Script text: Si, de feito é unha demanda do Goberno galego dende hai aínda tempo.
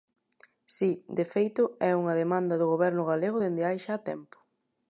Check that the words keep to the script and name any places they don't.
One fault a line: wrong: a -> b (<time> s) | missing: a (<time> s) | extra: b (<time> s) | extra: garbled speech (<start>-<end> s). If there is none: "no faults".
wrong: aínda -> xa (3.8 s)